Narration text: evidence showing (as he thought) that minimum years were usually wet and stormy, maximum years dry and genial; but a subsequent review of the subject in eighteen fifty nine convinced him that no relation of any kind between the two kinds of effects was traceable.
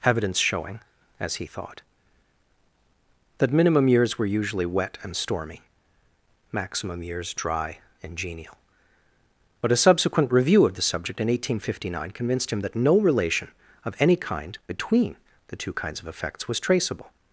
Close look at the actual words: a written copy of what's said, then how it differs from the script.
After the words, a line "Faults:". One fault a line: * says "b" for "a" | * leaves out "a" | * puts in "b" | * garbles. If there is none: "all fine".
evidence showing (as he thought) that minimum years were usually wet and stormy, maximum years dry and genial; but a subsequent review of the subject in eighteen fifty nine convinced him that no relation of any kind between the two kinds of effects was traceable.
Faults:
all fine